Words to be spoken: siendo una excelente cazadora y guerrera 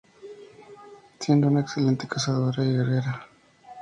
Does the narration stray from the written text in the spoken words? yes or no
no